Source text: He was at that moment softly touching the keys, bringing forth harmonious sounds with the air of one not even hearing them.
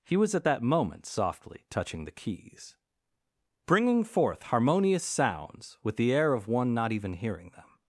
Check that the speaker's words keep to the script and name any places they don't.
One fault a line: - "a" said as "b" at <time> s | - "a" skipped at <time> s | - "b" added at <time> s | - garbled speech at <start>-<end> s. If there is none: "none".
none